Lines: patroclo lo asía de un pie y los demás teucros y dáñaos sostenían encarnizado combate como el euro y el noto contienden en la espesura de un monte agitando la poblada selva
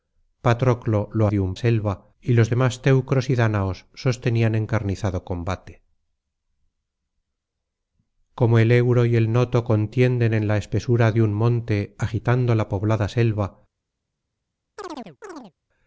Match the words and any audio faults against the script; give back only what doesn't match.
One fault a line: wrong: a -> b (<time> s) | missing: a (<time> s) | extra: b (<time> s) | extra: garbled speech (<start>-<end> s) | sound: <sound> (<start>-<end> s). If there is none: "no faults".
missing: asía (1.3 s)
wrong: pie -> selva (1.6 s)
sound: chirp (14.8-15.5 s)